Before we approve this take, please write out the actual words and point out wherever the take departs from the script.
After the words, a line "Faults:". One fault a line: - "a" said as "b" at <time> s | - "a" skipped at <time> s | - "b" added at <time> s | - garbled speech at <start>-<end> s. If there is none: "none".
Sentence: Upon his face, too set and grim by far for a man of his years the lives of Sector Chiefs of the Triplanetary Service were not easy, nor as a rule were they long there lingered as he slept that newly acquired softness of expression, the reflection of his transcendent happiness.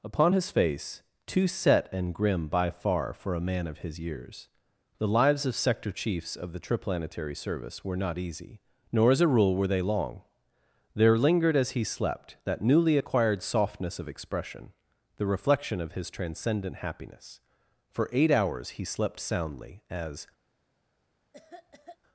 Upon his face, too set and grim by far for a man of his years the lives of Sector Chiefs of the Triplanetary Service were not easy, nor as a rule were they long there lingered as he slept that newly acquired softness of expression, the reflection of his transcendent happiness. For eight hours he slept soundly, as
Faults:
- "For eight hours he slept soundly as" added at 17.9 s